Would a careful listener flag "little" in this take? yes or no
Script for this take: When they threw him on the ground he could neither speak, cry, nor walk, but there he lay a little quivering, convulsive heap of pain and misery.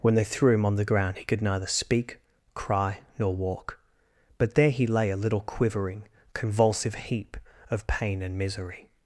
no